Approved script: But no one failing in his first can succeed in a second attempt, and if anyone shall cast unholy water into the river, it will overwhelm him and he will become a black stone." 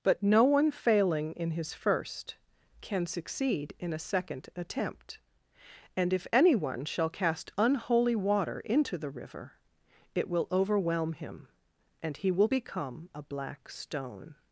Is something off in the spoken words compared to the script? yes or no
no